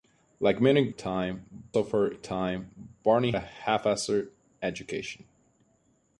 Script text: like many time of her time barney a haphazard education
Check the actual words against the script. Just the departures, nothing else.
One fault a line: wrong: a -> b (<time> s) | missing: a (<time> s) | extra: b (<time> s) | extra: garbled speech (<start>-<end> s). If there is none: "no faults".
no faults